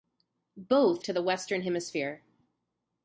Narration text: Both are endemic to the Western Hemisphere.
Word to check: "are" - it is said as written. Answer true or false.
false